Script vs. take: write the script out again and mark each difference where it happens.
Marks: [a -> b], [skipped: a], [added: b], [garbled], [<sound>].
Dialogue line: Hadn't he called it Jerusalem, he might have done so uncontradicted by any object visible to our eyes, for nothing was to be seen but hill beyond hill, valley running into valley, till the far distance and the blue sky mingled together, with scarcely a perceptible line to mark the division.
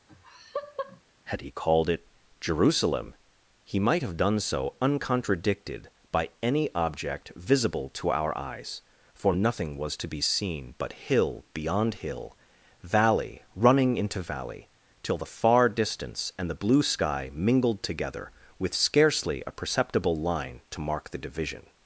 [laugh] [Hadn't -> Had] he called it Jerusalem, he might have done so uncontradicted by any object visible to our eyes, for nothing was to be seen but hill beyond hill, valley running into valley, till the far distance and the blue sky mingled together, with scarcely a perceptible line to mark the division.